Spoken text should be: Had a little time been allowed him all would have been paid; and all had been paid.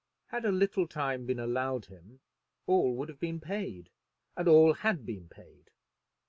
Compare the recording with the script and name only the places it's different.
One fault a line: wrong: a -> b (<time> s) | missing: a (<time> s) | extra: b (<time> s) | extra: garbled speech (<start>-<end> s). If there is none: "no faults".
no faults